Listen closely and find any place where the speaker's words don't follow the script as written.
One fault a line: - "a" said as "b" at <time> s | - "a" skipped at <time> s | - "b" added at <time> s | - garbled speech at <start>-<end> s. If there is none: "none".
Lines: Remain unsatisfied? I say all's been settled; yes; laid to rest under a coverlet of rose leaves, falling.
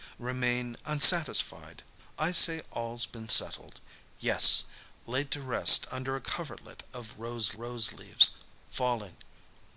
- "rose" added at 7.6 s